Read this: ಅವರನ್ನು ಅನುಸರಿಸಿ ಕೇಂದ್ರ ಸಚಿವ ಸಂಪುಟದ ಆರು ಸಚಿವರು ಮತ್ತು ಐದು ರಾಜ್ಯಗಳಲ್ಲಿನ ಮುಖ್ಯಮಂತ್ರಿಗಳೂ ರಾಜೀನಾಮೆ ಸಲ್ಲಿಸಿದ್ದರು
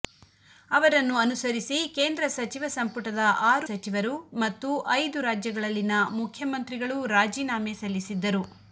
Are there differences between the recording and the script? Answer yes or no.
no